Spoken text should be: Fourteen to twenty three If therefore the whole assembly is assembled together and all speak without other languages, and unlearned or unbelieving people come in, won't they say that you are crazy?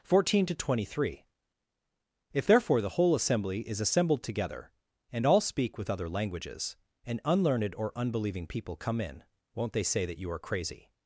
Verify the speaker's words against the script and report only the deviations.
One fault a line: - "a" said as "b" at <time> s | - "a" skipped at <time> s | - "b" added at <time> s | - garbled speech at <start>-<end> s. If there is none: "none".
- "without" said as "with" at 5.8 s